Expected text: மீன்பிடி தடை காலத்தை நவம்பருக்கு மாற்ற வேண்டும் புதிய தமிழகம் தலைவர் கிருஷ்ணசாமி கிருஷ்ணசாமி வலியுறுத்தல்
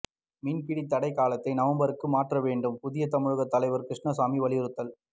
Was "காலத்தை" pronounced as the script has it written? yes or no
yes